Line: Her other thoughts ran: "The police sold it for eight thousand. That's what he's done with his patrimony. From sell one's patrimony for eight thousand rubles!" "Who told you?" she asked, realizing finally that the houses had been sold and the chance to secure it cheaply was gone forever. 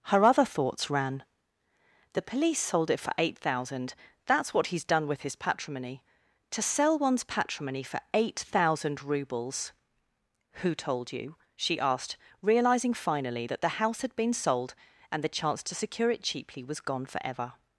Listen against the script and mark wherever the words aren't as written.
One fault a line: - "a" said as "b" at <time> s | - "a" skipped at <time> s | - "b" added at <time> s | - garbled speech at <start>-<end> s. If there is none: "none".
- "From" said as "To" at 6.5 s
- "houses" said as "house" at 13.8 s